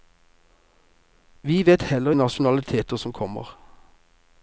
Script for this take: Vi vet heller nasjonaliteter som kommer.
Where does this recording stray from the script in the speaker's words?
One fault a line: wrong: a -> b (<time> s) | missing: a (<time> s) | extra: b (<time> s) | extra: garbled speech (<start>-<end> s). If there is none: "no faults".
no faults